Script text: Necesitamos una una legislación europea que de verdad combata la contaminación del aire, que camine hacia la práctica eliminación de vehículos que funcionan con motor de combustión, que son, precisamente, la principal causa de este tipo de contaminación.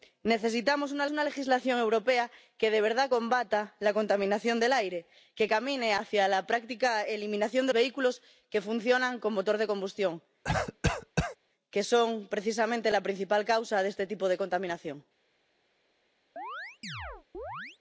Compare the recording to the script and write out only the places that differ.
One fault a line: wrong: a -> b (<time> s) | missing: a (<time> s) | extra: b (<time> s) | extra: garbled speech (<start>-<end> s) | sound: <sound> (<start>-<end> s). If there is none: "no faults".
sound: cough (10.4-11.4 s)
sound: chirp (16.4-17.8 s)